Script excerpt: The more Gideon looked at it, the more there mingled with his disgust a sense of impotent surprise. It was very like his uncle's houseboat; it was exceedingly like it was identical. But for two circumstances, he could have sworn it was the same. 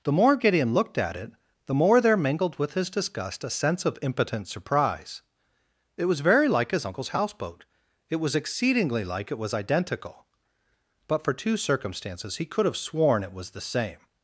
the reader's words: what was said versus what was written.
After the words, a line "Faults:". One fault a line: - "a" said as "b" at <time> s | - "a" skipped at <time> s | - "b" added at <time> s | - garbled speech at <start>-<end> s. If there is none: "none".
The more Gideon looked at it, the more there mingled with his disgust a sense of impotent surprise. It was very like his uncle's houseboat; it was exceedingly like it was identical. But for two circumstances, he could have sworn it was the same.
Faults:
none